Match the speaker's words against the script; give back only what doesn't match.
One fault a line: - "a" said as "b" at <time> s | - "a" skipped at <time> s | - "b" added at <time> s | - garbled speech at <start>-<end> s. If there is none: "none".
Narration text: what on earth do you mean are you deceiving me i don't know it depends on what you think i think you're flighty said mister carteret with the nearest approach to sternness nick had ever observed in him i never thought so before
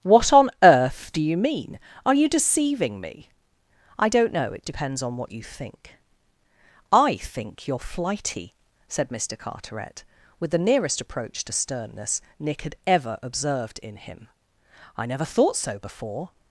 none